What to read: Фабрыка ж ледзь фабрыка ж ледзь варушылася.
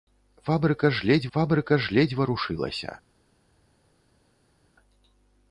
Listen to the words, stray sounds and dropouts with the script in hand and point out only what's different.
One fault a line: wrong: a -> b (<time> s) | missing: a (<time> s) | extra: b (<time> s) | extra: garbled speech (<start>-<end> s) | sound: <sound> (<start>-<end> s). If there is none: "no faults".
no faults